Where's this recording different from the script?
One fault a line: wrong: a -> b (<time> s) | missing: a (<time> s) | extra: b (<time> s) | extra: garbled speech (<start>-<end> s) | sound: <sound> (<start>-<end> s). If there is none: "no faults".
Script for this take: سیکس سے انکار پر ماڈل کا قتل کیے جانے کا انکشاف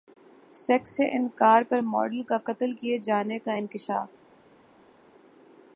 no faults